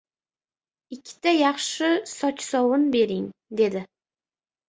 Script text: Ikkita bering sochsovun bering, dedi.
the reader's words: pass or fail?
fail